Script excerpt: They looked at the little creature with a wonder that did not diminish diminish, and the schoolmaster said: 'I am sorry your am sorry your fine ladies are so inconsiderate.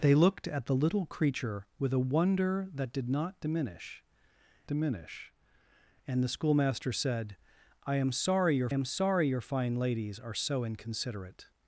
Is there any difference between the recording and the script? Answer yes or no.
no